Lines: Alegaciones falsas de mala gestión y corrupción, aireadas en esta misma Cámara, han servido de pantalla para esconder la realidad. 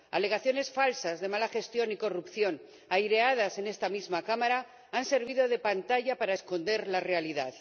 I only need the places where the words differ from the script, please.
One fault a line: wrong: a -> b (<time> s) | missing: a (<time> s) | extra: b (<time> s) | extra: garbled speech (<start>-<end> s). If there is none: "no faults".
no faults